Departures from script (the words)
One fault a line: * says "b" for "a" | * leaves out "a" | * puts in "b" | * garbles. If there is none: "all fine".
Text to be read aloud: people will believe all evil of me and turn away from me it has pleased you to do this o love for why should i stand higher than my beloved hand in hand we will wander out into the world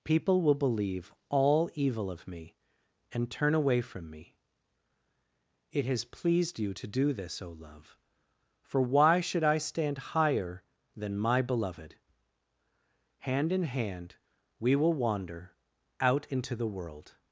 all fine